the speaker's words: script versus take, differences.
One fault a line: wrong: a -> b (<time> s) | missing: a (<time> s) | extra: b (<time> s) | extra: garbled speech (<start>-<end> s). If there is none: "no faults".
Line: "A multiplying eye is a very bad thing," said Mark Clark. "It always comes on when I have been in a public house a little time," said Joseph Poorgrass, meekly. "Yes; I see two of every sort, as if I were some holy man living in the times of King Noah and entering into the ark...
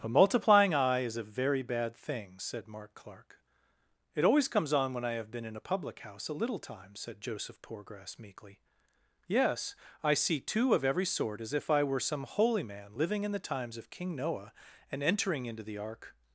no faults